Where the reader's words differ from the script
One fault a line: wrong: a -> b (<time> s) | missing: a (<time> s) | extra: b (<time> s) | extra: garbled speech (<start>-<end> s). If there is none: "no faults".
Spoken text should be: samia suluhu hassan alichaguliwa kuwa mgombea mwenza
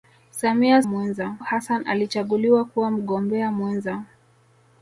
wrong: suluhu -> mwenza (0.8 s)